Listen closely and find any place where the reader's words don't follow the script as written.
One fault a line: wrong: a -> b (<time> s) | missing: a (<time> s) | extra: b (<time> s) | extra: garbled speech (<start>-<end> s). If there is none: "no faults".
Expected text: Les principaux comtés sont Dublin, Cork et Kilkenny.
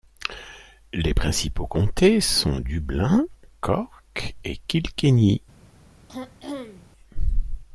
no faults